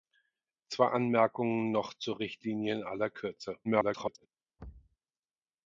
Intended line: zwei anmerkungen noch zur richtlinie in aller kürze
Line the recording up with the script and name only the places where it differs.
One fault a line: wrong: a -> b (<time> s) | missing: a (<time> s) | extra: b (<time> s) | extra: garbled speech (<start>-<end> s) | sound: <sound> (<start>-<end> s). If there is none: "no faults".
extra: garbled speech (3.6-4.3 s)
sound: thud (4.6-5.0 s)